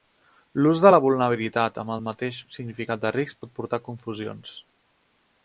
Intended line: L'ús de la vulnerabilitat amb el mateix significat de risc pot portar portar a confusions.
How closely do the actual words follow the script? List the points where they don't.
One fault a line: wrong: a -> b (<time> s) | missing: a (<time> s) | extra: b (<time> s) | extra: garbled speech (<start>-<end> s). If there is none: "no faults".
missing: portar (3.8 s)